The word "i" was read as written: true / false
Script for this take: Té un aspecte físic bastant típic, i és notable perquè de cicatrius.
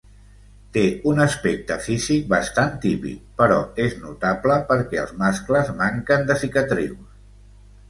false